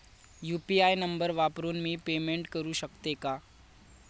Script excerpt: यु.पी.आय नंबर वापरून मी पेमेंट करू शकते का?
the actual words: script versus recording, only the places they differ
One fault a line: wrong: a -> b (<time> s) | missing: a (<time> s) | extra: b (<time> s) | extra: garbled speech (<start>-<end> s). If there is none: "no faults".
no faults